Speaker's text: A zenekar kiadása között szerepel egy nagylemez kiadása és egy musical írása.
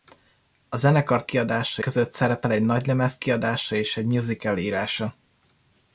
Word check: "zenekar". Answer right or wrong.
right